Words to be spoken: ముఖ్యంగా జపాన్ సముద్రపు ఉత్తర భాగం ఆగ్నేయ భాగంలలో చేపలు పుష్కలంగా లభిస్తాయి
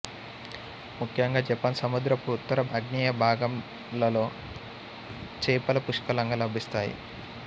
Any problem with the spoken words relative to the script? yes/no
yes